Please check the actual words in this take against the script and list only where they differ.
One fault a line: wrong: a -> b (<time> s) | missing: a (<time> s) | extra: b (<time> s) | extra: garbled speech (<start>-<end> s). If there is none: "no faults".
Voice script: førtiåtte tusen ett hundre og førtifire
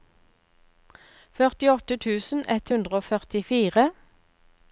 no faults